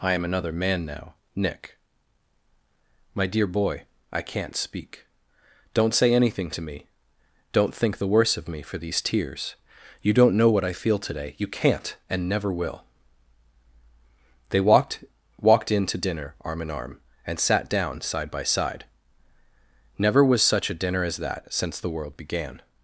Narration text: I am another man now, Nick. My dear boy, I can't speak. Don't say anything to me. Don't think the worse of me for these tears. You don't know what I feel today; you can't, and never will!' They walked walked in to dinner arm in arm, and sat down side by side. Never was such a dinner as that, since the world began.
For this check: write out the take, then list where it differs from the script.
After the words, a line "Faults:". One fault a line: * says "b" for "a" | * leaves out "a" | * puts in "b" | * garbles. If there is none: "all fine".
I am another man now, Nick. My dear boy, I can't speak. Don't say anything to me. Don't think the worse of me for these tears. You don't know what I feel today; you can't, and never will!' They walked walked in to dinner arm in arm, and sat down side by side. Never was such a dinner as that, since the world began.
Faults:
all fine